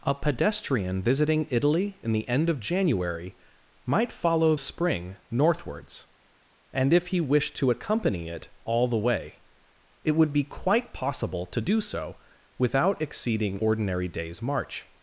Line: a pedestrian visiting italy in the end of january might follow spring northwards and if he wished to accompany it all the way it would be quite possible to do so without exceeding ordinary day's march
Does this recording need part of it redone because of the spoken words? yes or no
no